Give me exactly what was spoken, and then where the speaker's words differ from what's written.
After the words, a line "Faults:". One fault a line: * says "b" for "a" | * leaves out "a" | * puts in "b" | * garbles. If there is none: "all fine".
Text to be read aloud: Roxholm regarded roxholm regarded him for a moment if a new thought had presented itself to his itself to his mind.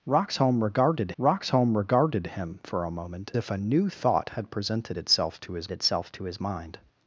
Roxholm regarded roxholm regarded him for a moment if a new thought had presented itself to his itself to his mind.
Faults:
all fine